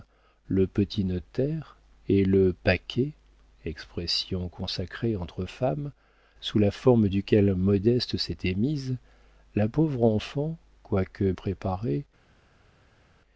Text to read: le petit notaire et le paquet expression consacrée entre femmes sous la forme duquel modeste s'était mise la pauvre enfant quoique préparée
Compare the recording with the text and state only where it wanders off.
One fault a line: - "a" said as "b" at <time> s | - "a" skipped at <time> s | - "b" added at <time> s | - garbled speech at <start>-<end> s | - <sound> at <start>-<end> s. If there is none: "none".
none